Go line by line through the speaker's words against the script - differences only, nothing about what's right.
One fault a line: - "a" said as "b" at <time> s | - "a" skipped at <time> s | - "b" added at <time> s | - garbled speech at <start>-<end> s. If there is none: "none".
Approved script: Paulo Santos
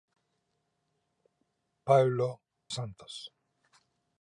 none